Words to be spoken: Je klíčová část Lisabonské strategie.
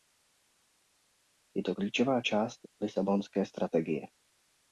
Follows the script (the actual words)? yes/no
no